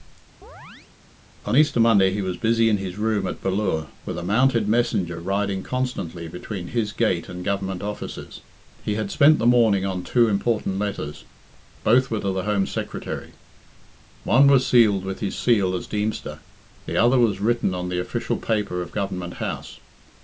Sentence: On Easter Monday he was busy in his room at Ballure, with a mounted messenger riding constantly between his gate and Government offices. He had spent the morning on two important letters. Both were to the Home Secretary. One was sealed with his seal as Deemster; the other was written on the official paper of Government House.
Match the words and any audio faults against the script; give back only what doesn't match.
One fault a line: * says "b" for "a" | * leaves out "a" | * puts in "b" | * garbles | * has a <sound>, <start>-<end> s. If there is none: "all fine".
* has a chirp, 0.4-0.9 s